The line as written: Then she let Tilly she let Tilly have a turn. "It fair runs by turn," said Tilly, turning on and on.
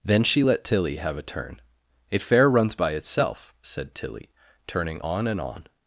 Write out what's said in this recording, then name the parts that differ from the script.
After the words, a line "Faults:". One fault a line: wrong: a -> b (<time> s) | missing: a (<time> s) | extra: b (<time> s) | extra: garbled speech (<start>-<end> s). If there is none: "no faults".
Then she let Tilly have a turn. "It fair runs by itself," said Tilly, turning on and on.
Faults:
missing: she let Tilly (1.0 s)
wrong: turn -> itself (2.9 s)